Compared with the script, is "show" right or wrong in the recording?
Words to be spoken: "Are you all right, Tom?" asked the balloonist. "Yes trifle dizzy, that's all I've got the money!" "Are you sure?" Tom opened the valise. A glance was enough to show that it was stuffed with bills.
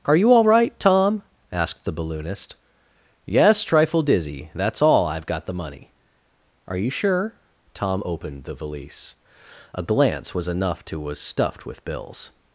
wrong